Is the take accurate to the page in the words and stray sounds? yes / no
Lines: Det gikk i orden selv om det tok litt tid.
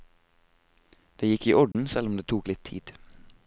no